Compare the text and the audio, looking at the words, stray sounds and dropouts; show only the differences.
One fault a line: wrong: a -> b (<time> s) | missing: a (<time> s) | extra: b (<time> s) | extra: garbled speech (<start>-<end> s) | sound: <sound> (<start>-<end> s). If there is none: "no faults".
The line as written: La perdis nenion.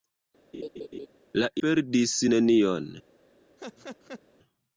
sound: laugh (0.5-1.1 s)
sound: laugh (3.6-4.2 s)